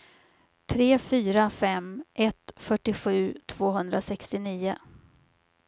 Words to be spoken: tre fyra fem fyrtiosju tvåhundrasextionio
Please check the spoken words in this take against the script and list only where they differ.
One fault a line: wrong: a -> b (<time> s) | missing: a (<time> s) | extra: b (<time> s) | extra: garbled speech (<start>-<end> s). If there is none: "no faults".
extra: ett (2.1 s)